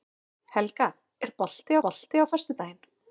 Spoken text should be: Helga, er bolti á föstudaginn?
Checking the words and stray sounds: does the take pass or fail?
fail